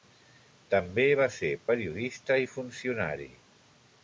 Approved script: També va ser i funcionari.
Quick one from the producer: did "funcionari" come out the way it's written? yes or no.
yes